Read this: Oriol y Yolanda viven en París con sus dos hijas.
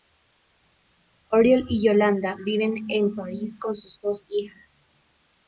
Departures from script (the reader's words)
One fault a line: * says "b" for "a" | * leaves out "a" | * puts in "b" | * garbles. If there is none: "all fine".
all fine